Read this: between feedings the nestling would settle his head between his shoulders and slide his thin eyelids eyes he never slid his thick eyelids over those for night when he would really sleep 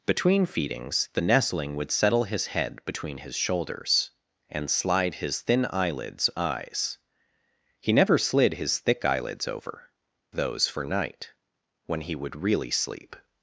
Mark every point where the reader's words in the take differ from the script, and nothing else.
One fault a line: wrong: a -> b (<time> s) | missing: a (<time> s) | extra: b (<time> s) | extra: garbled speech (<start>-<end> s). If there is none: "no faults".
no faults